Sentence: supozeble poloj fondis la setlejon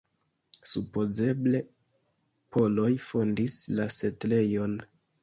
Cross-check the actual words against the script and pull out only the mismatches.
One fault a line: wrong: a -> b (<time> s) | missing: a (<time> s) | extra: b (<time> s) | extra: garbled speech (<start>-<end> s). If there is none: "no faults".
no faults